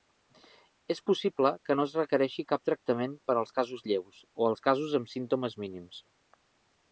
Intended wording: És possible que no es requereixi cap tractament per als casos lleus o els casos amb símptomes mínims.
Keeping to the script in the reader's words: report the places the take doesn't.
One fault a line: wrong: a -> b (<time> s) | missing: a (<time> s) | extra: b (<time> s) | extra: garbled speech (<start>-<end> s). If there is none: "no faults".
no faults